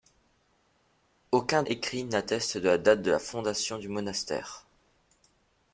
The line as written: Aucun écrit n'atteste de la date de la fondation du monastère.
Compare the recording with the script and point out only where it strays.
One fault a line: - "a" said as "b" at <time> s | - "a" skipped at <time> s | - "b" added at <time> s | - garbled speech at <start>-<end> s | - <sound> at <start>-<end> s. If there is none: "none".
none